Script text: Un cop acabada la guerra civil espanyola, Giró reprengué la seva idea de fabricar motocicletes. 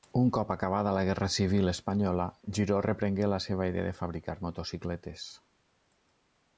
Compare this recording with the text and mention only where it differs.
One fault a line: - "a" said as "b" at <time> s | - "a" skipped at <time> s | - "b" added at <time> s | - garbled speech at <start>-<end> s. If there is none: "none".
none